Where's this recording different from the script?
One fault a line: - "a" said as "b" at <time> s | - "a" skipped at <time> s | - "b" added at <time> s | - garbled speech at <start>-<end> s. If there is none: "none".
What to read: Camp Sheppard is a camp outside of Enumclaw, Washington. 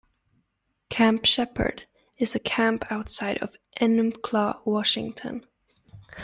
none